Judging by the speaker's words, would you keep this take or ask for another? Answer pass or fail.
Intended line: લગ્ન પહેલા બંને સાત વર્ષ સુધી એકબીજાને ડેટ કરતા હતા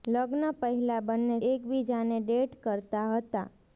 fail